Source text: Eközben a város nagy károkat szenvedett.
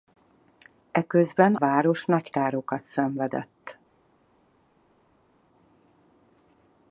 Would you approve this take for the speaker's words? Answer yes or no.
no